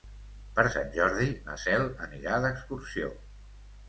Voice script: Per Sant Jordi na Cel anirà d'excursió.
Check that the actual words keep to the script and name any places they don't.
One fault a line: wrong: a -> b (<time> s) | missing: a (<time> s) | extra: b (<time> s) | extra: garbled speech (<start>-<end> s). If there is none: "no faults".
no faults